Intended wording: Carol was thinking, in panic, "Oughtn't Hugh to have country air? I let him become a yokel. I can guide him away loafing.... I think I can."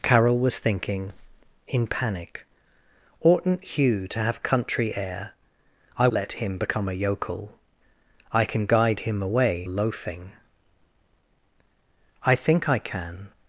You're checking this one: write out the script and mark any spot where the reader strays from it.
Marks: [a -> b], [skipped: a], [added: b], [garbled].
Carol was thinking, in panic, "Oughtn't Hugh to have country air? I let him become a yokel. I can guide him away loafing.... I think I can."